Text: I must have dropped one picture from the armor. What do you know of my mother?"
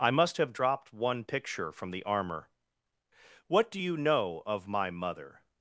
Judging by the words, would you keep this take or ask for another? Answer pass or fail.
pass